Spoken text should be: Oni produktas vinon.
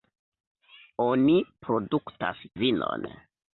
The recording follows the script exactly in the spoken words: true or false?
true